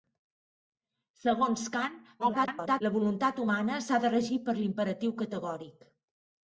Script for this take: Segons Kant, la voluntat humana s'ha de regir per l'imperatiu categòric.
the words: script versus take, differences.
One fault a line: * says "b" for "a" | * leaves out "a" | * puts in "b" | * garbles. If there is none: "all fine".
* garbles